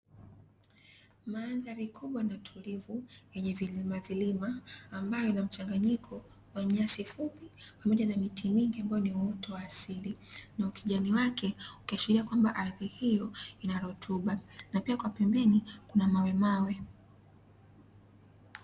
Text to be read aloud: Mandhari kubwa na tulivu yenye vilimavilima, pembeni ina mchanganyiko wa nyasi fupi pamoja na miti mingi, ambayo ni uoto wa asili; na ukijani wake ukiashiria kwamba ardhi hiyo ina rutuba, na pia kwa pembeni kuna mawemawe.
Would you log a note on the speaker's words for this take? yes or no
yes